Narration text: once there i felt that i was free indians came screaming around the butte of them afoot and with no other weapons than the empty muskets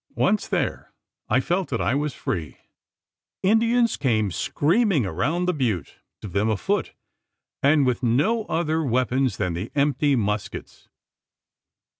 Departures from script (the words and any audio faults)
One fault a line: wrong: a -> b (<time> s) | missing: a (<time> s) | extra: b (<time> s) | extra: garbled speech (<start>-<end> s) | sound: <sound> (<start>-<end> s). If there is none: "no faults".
no faults